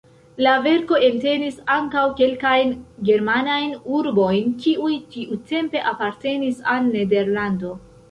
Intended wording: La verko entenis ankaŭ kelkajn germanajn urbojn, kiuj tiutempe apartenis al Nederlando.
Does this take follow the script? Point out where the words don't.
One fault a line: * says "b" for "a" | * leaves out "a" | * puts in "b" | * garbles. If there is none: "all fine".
all fine